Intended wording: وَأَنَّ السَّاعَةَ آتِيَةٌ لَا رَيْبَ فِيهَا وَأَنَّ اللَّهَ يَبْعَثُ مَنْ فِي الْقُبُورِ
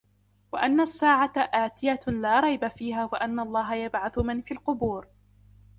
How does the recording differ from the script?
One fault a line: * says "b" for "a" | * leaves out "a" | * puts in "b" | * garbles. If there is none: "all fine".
all fine